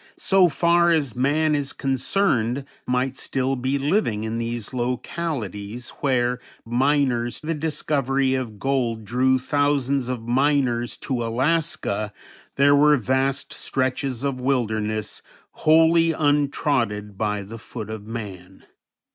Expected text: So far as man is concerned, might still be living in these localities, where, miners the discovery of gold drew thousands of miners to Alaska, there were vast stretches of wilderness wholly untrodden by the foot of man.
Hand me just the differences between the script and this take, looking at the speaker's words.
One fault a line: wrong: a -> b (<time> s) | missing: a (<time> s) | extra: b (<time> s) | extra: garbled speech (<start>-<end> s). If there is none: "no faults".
no faults